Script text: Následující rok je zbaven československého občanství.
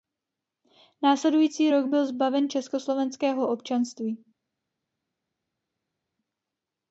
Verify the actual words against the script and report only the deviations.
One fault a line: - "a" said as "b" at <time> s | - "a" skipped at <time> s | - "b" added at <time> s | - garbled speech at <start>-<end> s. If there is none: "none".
- "je" said as "byl" at 1.9 s